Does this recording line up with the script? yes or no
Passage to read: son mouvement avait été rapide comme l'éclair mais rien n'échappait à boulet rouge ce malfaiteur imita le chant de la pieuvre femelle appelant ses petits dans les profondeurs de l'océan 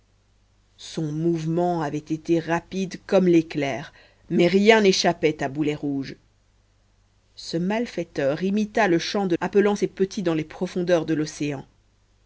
no